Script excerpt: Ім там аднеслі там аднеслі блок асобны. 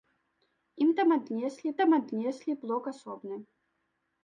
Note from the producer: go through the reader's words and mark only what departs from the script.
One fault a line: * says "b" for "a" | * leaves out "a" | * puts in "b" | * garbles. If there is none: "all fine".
all fine